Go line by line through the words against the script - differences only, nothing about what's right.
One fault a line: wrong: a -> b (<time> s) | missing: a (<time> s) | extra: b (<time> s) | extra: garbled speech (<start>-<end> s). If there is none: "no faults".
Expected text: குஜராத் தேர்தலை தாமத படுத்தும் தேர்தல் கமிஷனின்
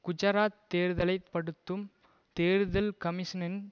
missing: தாமத (1.1 s)